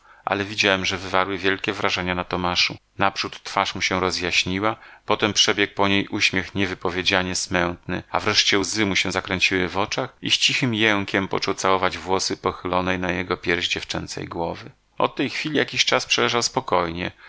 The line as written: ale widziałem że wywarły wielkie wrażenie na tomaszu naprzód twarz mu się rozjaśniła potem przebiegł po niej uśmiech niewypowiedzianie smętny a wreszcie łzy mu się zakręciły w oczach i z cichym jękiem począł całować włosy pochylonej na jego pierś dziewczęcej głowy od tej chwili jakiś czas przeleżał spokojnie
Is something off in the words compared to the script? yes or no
no